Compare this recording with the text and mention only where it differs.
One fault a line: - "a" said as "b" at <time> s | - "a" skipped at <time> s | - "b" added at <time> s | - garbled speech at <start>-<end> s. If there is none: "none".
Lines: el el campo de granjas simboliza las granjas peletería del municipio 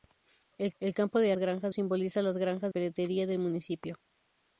none